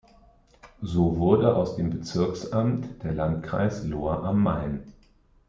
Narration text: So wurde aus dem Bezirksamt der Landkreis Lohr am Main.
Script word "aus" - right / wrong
right